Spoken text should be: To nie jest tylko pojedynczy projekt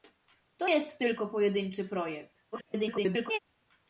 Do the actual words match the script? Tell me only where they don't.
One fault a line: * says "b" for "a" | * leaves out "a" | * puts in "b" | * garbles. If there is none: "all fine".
* leaves out "nie"
* garbles